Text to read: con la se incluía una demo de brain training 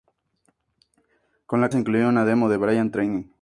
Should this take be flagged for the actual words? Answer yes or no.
no